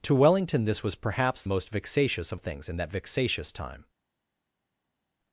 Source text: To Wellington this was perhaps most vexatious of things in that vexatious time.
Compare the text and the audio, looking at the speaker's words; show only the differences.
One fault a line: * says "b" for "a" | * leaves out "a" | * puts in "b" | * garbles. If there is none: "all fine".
all fine